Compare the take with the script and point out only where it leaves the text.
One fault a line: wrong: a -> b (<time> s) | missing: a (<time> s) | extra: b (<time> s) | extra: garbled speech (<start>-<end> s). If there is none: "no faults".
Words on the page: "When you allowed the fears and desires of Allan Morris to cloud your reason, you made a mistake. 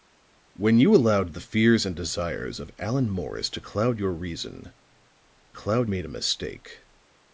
wrong: you -> cloud (5.5 s)